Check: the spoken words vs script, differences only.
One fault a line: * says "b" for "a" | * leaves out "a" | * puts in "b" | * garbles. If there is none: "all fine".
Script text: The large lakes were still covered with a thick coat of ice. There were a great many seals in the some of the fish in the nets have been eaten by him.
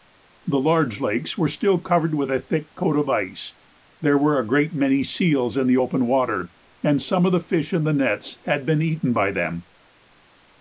* puts in "open water and"
* says "had" for "have"
* says "them" for "him"